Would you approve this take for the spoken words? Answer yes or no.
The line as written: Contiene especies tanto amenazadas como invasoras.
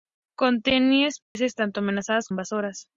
no